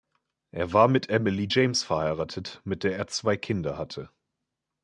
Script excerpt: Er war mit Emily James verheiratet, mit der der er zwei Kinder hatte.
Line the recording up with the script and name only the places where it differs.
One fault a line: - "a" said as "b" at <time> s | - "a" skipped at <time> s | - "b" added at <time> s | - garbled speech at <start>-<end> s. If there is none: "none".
- "der" skipped at 2.9 s